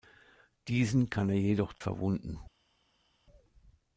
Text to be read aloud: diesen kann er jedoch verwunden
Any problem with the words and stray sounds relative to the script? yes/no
no